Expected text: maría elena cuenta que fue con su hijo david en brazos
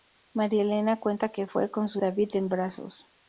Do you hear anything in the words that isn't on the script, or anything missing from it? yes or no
yes